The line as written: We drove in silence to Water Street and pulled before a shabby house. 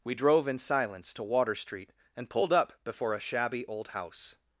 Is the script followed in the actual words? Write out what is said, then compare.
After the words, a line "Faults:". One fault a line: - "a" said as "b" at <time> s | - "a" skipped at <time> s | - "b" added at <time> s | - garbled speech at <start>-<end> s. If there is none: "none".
We drove in silence to Water Street and pulled up before a shabby old house.
Faults:
- "up" added at 2.5 s
- "old" added at 3.7 s